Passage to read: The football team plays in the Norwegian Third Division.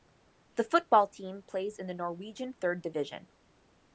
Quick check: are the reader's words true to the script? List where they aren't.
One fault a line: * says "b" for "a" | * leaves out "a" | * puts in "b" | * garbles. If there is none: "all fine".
all fine